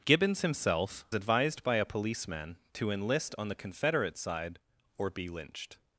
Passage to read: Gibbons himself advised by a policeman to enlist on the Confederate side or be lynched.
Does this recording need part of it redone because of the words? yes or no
no